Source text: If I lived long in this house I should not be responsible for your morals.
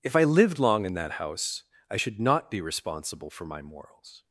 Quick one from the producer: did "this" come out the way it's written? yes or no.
no